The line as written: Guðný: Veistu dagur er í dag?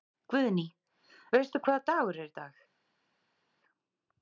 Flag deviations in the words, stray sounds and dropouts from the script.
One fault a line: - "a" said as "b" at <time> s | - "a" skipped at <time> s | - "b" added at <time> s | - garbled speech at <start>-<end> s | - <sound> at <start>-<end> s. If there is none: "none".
- "hvaða" added at 1.7 s